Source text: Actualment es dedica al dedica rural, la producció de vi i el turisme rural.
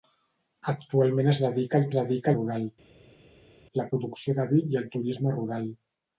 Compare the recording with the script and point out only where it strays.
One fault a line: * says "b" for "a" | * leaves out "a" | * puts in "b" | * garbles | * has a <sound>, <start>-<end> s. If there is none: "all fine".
all fine